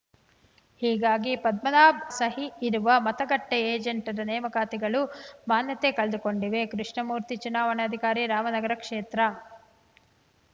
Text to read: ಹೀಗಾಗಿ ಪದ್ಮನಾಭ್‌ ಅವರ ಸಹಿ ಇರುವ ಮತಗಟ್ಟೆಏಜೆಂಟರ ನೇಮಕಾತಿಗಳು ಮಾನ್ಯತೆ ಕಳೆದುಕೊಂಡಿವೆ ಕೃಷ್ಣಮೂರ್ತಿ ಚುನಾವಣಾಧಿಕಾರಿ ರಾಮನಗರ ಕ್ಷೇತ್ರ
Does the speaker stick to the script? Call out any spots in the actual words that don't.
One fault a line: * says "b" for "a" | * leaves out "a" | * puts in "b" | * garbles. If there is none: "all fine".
* leaves out "ಅವರ"